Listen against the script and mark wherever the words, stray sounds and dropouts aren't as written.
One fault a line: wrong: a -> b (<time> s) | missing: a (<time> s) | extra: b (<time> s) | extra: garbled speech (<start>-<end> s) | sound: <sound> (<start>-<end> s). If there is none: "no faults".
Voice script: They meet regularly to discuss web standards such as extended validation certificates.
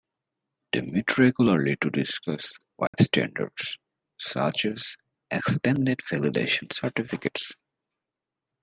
sound: dropout (2.9-2.9 s)